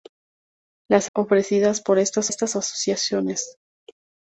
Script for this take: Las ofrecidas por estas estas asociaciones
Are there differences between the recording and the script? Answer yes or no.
no